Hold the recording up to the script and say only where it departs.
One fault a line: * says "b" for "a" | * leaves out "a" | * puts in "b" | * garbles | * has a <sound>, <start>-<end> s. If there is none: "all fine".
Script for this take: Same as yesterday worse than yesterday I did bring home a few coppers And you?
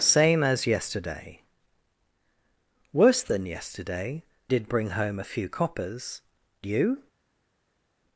* leaves out "I"
* leaves out "And"